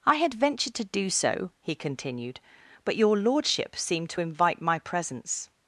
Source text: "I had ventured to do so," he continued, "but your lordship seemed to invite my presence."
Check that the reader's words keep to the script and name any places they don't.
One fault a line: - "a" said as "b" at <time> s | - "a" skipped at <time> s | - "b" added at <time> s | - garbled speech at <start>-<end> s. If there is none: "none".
none